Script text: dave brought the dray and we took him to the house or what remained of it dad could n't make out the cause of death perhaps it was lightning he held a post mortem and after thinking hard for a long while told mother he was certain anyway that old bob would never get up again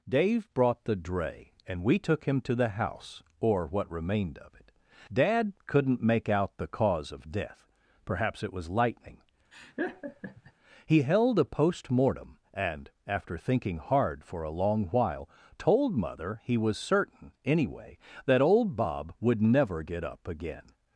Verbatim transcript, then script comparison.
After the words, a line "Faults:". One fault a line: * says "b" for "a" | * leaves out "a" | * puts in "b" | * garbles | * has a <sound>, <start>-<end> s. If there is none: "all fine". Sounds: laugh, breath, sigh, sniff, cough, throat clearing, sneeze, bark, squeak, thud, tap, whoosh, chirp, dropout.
dave brought the dray and we took him to the house or what remained of it dad could n't make out the cause of death perhaps it was lightning he held a post mortem and after thinking hard for a long while told mother he was certain anyway that old bob would never get up again
Faults:
* has a laugh, 9.5-10.5 s